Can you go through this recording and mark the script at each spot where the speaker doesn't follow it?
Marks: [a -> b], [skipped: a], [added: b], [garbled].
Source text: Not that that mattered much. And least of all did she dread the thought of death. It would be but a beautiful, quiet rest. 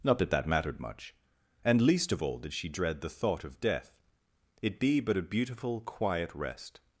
Not that that mattered much. And least of all did she dread the thought of death. It [skipped: would] be but a beautiful, quiet rest.